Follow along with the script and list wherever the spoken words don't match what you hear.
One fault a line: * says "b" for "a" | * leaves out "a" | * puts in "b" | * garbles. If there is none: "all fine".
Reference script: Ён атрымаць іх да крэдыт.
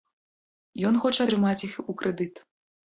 * puts in "хоча"
* says "у" for "да"